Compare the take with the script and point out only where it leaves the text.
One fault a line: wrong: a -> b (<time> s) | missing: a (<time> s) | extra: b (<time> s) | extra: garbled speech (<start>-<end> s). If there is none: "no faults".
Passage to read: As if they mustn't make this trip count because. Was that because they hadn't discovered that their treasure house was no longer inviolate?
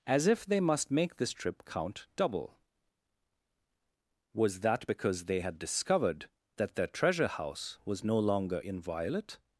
wrong: mustn't -> must (0.6 s)
wrong: because -> double (2.1 s)
wrong: hadn't -> had (5.4 s)